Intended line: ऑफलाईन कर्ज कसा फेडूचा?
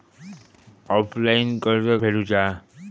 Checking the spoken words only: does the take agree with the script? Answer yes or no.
no